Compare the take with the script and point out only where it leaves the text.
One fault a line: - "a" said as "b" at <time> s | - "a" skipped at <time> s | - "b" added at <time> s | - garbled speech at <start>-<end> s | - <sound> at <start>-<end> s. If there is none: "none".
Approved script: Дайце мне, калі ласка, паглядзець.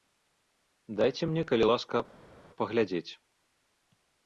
none